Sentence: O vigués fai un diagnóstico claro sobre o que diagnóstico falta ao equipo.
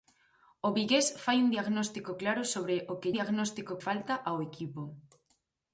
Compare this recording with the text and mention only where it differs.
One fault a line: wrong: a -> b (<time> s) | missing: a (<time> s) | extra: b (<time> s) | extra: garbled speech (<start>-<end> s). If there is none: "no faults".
no faults